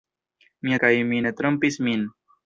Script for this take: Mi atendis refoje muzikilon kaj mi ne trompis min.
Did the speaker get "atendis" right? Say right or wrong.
wrong